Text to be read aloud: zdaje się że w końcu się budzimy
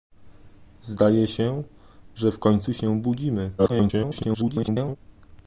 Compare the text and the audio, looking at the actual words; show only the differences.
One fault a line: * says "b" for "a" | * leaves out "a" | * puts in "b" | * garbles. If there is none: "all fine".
* garbles